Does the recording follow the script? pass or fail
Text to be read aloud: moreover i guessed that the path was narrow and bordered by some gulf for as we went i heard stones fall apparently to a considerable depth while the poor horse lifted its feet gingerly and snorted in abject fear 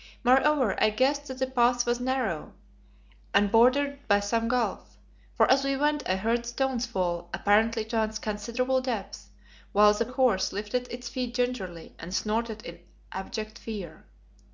fail